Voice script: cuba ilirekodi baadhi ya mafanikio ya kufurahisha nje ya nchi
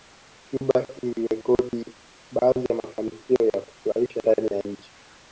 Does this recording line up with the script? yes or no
no